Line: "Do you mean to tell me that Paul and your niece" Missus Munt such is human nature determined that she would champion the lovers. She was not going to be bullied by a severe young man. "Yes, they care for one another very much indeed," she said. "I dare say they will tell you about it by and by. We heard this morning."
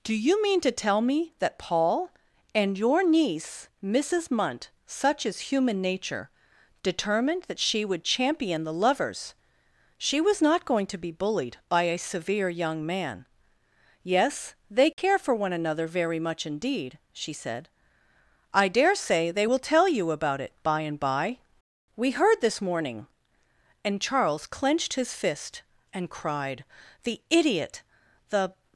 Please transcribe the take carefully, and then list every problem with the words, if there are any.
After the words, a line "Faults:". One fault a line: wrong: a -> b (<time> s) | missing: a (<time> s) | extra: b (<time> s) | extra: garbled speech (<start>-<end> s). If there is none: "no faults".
"Do you mean to tell me that Paul and your niece" Missus Munt such is human nature determined that she would champion the lovers. She was not going to be bullied by a severe young man. "Yes, they care for one another very much indeed," she said. "I dare say they will tell you about it by and by. We heard this morning." And Charles clenched his fist and cried, "The idiot, the
Faults:
extra: And Charles clenched his fist and cried The idiot the (23.8 s)